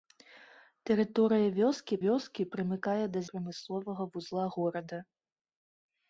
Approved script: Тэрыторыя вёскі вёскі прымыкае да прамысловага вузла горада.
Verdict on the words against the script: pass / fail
pass